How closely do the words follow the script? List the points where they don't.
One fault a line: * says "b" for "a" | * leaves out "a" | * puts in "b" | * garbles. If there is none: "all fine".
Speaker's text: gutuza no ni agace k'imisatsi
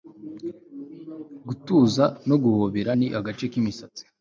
* puts in "guhobera"